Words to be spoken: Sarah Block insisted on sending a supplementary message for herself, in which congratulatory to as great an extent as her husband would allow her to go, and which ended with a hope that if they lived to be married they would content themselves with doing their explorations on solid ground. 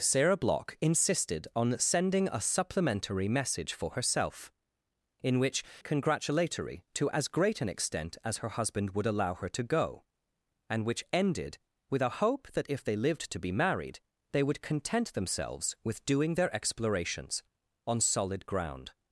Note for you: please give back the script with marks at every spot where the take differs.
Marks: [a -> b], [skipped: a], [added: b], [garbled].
Sarah Block insisted on sending a supplementary message for herself, in which congratulatory to as great an extent as her husband would allow her to go, and which ended with a hope that if they lived to be married they would content themselves with doing their explorations on solid ground.